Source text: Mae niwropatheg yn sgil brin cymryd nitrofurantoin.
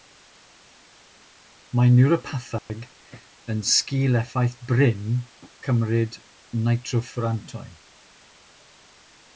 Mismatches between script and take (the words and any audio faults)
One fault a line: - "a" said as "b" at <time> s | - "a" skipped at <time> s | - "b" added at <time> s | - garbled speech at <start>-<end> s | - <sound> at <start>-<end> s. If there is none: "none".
- dropout at 2.6-2.7 s
- "effaith" added at 4.2 s